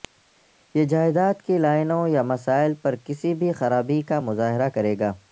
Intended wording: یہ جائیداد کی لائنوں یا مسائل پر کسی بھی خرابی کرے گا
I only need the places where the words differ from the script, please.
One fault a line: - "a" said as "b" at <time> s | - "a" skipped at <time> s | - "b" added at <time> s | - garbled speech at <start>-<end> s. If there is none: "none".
- "کا مظاہرہ" added at 4.0 s